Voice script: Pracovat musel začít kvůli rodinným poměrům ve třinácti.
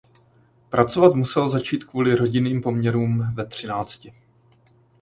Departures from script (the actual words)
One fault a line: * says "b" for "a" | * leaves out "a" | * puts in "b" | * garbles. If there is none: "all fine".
all fine